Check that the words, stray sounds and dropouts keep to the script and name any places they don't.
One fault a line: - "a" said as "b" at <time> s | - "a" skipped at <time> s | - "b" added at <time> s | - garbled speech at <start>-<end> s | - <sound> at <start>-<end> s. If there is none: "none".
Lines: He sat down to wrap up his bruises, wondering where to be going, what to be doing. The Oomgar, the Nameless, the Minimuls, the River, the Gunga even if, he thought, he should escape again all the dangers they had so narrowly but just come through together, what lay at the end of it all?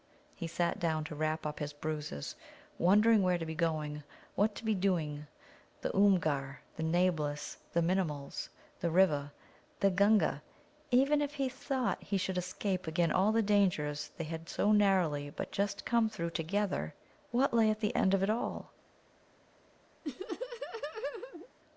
- laugh at 20.0-21.5 s